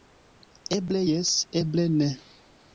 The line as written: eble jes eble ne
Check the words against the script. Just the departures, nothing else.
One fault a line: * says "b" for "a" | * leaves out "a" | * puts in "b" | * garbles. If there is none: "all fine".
all fine